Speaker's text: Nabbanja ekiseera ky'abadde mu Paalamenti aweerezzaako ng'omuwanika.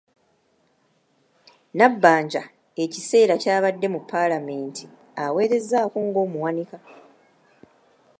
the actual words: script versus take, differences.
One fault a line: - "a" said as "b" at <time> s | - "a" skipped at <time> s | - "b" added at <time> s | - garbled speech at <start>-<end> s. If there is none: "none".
none